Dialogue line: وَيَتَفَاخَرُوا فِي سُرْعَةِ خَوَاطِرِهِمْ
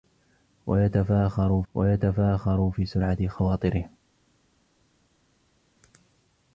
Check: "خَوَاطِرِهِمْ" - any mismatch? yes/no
no